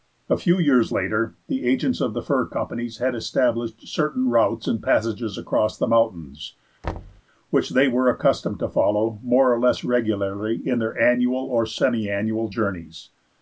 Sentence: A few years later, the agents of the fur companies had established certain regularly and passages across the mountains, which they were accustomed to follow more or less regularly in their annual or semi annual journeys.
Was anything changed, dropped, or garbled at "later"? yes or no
no